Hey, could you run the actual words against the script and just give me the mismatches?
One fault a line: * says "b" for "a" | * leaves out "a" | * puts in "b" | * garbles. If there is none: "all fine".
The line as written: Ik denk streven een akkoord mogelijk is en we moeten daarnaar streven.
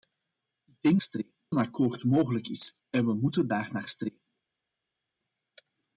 all fine